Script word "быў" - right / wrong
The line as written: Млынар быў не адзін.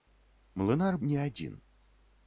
wrong